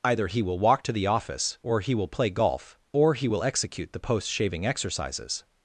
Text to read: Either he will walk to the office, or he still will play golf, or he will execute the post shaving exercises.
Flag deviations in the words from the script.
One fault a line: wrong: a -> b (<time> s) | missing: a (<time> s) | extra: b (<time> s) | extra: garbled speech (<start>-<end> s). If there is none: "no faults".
missing: still (1.9 s)